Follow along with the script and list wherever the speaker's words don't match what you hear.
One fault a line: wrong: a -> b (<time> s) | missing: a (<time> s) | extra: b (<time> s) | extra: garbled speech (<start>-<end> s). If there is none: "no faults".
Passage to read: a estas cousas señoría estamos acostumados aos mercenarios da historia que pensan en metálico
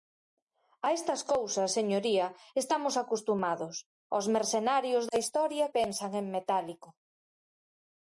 missing: que (5.7 s)